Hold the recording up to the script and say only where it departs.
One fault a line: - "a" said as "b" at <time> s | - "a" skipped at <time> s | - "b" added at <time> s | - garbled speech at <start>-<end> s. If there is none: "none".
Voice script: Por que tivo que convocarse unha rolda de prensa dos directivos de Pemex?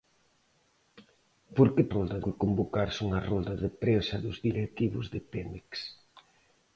- "tivo" said as "rolda" at 1.9 s